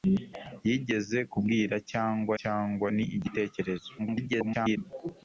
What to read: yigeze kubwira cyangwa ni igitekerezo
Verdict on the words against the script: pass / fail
fail